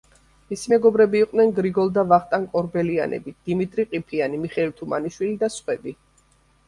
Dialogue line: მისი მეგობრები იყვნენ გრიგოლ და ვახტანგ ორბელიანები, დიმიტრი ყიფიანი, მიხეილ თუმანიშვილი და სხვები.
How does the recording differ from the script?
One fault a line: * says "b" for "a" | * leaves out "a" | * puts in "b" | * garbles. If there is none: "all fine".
all fine